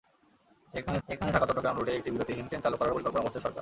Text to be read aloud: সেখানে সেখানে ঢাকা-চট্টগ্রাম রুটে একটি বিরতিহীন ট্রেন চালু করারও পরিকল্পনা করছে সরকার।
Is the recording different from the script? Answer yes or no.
no